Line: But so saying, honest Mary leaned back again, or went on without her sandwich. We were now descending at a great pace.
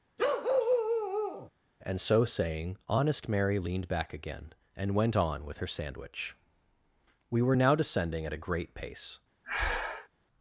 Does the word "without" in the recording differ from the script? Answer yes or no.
yes